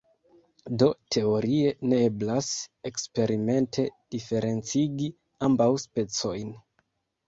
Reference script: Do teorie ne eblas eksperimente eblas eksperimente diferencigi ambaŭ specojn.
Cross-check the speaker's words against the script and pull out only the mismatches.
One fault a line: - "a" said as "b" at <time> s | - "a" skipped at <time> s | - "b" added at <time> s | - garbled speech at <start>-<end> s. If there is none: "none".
- "eblas eksperimente" skipped at 3.9 s